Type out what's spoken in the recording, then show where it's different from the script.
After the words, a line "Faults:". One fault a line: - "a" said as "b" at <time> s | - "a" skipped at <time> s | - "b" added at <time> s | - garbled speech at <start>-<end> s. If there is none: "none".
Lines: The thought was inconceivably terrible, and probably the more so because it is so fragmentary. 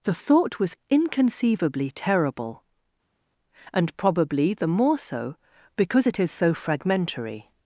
The thought was inconceivably terrible, and probably the more so because it is so fragmentary.
Faults:
none